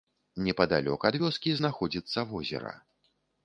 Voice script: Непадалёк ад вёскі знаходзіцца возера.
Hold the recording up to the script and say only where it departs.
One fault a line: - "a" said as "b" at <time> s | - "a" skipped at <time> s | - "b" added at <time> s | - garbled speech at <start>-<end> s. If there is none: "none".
none